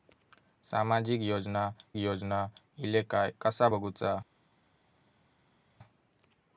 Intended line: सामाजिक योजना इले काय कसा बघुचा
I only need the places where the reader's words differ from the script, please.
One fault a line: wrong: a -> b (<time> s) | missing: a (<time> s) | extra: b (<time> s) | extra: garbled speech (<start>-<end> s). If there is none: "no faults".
extra: योजना (2.0 s)